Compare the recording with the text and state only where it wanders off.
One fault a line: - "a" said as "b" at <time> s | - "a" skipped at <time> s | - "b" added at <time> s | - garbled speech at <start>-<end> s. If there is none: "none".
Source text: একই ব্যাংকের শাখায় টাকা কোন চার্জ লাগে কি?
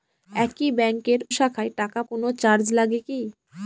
none